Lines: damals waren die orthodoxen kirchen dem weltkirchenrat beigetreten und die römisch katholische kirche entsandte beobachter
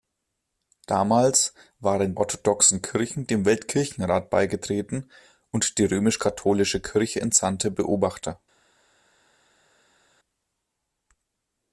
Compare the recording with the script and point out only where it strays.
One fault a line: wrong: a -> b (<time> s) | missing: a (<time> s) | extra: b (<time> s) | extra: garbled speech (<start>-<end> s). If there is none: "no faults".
missing: die (2.1 s)